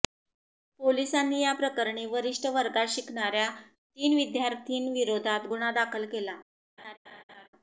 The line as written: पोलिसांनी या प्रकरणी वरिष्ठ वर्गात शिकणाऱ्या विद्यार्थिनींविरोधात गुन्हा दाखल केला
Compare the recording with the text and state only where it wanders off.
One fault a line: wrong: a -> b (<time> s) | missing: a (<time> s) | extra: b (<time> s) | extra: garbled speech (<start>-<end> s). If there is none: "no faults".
extra: तीन (3.5 s)